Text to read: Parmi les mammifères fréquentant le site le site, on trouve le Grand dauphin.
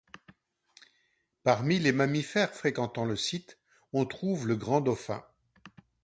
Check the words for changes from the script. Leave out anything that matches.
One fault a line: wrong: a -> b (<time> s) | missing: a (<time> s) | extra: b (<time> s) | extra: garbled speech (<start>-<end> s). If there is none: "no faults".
missing: le site (3.6 s)